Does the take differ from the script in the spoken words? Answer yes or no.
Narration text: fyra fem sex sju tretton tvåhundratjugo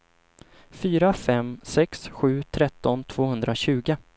no